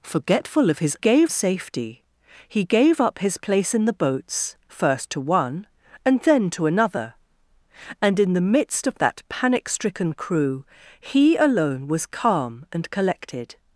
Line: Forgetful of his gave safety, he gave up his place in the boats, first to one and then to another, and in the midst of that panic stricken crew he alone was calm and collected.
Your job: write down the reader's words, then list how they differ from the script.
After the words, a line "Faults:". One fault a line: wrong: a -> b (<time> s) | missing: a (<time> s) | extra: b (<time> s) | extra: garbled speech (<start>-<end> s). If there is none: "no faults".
Forgetful of his gave safety, he gave up his place in the boats, first to one and then to another, and in the midst of that panic stricken crew he alone was calm and collected.
Faults:
no faults